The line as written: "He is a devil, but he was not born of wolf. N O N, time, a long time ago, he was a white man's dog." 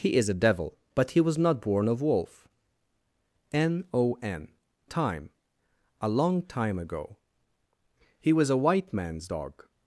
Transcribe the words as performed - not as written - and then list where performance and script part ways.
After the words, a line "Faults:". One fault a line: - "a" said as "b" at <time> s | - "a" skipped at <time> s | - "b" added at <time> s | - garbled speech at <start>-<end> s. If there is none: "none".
"He is a devil, but he was not born of wolf. N O N, time, a long time ago, he was a white man's dog."
Faults:
none